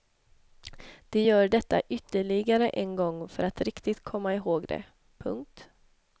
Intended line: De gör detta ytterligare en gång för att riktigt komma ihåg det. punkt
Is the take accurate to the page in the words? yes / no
yes